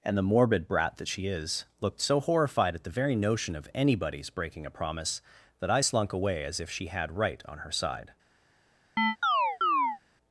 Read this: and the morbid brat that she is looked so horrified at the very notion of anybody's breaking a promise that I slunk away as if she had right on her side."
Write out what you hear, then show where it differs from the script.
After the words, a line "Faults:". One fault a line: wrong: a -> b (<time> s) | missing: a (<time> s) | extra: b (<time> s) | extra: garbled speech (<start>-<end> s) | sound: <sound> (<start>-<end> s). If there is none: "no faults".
and the morbid brat that she is looked so horrified at the very notion of anybody's breaking a promise that I slunk away as if she had right on her side."
Faults:
sound: chirp (9.0-10.0 s)